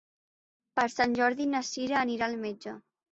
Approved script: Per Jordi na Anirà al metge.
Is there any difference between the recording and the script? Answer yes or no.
yes